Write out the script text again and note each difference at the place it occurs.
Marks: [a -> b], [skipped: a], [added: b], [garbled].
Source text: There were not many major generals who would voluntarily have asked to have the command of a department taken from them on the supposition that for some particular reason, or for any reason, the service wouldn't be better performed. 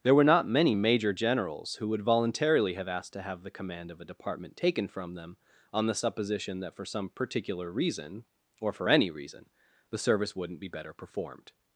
There were not many major generals who would voluntarily have asked to have the command of a department taken from them on the supposition that for some particular reason, or for any reason, the service wouldn't be better performed.